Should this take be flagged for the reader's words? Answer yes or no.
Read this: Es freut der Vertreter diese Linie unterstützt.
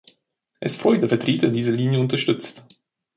no